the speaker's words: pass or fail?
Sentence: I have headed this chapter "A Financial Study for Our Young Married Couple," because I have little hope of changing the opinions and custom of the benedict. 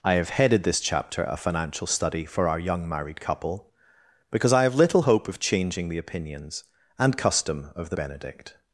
pass